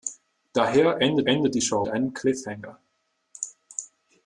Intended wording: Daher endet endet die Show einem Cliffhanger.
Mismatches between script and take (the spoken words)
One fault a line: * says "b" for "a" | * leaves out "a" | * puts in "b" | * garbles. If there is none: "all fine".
all fine